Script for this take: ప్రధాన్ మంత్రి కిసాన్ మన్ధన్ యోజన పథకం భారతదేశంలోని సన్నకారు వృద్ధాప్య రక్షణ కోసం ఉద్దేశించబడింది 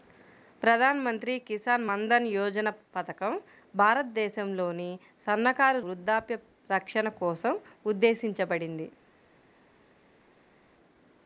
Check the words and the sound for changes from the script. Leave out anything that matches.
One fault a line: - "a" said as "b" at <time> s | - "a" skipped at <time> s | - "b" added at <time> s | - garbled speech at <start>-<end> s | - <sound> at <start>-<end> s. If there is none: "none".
none